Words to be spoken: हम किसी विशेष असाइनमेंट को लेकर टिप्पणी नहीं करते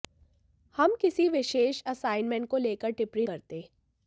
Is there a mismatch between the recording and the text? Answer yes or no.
yes